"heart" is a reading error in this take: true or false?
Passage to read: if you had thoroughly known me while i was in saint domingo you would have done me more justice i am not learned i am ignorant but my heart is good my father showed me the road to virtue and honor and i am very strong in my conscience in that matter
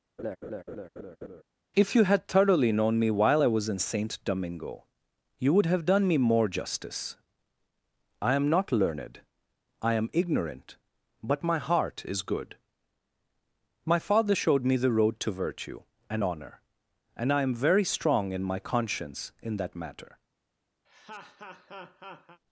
false